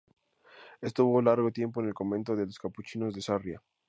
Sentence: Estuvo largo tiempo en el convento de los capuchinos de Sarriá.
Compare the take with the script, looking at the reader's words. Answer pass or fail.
pass